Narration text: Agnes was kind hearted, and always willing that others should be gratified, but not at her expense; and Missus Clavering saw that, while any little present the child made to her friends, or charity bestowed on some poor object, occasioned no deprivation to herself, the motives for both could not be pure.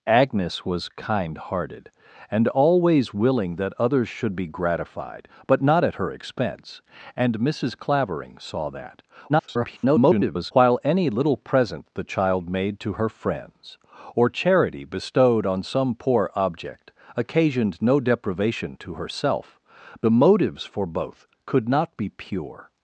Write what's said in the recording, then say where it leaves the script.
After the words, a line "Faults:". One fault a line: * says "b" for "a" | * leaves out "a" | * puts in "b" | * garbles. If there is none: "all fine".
Agnes was kind hearted, and always willing that others should be gratified, but not at her expense; and Missus Clavering saw that, [garbled] while any little present the child made to her friends, or charity bestowed on some poor object, occasioned no deprivation to herself, the motives for both could not be pure.
Faults:
* garbles